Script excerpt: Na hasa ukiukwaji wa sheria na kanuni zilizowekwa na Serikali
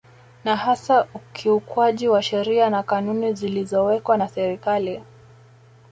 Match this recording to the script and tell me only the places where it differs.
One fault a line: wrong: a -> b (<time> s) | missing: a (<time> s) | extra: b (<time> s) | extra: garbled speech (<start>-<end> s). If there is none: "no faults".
no faults